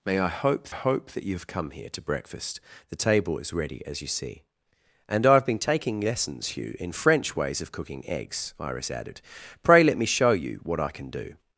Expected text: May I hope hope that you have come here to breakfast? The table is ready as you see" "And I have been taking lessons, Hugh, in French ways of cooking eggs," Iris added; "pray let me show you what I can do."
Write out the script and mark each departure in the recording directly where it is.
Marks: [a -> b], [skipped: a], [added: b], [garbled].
May I hope hope that you have come here to breakfast? The table is ready as you see" "And I have been taking lessons, Hugh, in French ways of cooking eggs," Iris added; "pray let me show you what I can do."